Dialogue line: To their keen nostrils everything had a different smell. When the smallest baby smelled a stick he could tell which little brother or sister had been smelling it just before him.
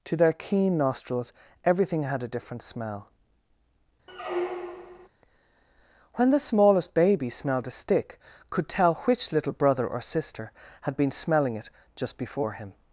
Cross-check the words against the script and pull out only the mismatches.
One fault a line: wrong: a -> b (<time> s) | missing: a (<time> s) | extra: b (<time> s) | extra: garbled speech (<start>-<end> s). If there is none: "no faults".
missing: he (8.2 s)